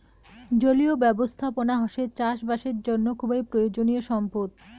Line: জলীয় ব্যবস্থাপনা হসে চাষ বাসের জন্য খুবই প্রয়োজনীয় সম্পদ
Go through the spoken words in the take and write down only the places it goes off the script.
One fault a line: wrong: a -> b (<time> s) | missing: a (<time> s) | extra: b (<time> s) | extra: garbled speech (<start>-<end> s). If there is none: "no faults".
no faults